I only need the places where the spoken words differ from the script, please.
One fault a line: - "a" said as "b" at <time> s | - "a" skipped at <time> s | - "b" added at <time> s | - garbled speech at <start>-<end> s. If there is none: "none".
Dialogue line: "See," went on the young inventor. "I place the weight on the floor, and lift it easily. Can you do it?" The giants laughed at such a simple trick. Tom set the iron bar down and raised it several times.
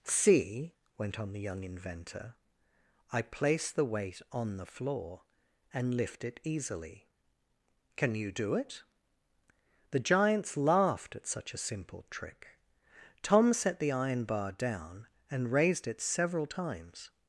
none